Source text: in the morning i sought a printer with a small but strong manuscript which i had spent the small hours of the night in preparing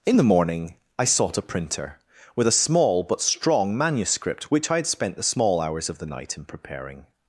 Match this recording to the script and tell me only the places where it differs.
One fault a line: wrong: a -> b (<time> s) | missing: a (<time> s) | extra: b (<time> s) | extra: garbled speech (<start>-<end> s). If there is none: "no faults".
no faults